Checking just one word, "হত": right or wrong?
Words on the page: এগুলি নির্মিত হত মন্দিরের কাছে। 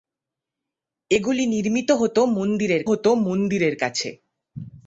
right